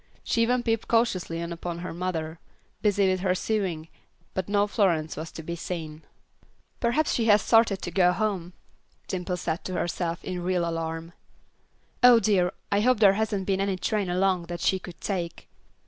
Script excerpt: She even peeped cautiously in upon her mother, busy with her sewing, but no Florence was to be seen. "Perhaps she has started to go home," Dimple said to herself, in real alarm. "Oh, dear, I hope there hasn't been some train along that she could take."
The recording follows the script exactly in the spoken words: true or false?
false